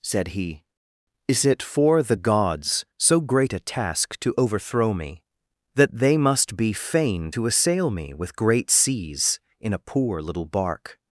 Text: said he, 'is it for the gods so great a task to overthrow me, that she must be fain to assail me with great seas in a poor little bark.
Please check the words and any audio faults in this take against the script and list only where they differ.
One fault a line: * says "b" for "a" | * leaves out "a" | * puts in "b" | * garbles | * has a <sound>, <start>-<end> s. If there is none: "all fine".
* says "they" for "she"